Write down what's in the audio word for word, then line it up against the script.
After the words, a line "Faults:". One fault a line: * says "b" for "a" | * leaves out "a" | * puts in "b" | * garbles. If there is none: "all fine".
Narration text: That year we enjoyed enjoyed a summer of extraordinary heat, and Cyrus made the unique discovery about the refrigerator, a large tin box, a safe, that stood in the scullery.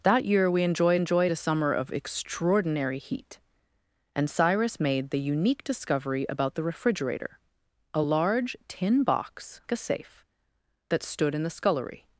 That year we enjoyed enjoyed a summer of extraordinary heat, and Cyrus made the unique discovery about the refrigerator, a large tin box, a safe, that stood in the scullery.
Faults:
all fine